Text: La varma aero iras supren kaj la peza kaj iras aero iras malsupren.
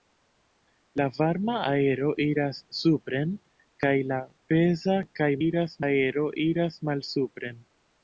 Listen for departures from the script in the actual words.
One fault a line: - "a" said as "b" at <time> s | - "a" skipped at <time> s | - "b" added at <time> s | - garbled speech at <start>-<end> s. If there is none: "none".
none